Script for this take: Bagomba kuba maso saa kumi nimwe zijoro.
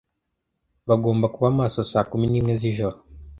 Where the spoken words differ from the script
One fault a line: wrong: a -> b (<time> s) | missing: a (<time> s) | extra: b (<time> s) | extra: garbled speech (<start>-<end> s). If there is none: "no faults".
no faults